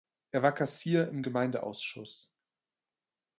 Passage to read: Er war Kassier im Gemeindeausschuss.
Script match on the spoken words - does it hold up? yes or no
yes